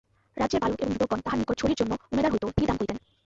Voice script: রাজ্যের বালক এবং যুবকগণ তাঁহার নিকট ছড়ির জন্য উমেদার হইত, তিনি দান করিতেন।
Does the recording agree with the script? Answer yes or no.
yes